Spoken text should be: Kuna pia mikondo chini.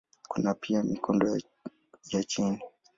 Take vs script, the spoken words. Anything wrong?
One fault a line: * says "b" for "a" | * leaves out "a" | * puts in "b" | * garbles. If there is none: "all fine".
* puts in "ya"